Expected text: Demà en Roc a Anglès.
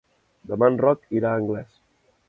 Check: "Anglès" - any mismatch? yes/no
no